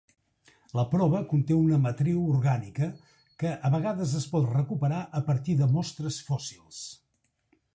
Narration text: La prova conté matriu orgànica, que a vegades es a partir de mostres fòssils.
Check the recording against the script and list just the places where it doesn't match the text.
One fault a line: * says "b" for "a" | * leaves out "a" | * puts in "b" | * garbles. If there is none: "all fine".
* puts in "una"
* puts in "pot recuperar"